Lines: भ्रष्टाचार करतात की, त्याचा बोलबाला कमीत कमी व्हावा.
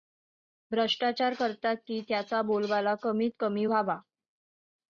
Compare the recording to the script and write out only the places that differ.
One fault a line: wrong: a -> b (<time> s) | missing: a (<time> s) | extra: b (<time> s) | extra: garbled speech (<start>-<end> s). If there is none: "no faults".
no faults